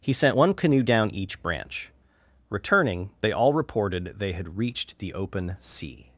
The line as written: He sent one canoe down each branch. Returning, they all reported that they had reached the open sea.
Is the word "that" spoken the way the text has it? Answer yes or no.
no